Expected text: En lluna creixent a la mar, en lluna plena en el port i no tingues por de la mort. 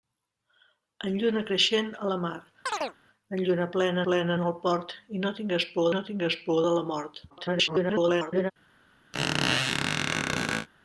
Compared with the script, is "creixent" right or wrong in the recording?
right